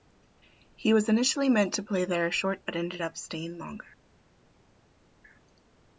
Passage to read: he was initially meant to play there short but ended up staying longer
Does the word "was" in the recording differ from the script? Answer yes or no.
no